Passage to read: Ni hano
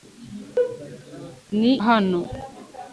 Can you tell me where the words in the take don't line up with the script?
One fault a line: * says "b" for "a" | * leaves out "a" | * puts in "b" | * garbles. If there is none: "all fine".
all fine